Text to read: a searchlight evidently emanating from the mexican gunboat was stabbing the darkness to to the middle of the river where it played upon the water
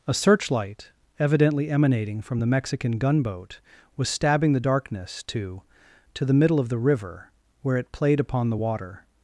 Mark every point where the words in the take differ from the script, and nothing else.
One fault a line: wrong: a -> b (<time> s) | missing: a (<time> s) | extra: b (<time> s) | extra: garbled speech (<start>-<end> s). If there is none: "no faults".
no faults